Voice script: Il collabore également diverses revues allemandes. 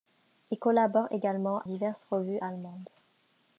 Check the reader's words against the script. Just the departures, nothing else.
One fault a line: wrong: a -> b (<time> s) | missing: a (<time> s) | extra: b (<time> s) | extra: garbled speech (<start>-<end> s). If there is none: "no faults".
no faults